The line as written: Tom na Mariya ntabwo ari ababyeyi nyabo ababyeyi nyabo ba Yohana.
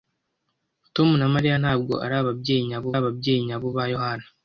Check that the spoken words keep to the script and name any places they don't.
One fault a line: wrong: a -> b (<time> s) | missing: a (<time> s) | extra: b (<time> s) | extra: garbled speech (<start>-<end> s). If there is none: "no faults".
no faults